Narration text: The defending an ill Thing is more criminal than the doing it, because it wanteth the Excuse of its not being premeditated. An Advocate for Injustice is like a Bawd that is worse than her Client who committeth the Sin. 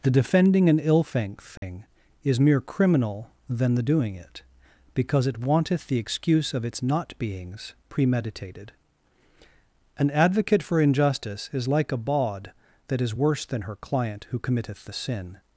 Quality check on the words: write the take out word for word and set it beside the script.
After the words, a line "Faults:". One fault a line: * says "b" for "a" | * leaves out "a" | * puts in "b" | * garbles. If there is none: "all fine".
The defending an ill Thing is mere criminal than the doing it, because it wanteth the Excuse of its not beings premeditated. An Advocate for Injustice is like a Bawd that is worse than her Client who committeth the Sin.
Faults:
* says "mere" for "more"
* says "beings" for "being"